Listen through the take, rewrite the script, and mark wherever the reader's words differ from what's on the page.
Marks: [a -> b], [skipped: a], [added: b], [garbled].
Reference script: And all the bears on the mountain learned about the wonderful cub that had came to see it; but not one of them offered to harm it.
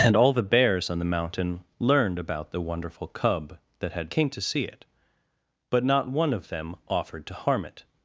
And all the bears on the mountain learned about the wonderful cub that had came to see it; but not one of them offered to harm it.